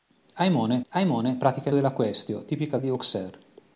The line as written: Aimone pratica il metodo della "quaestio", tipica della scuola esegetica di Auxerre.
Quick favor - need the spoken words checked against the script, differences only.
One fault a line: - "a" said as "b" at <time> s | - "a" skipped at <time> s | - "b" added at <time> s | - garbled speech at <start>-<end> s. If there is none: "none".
- "aimone" added at 0.9 s
- "metodo" skipped at 1.7 s
- "della scuola esegetica" skipped at 2.8 s